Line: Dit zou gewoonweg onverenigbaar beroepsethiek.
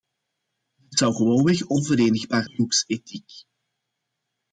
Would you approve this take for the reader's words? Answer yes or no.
yes